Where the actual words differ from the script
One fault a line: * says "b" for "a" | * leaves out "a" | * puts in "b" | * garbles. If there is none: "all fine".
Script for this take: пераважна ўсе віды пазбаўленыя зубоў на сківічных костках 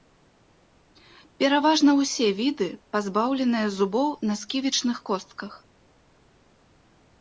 all fine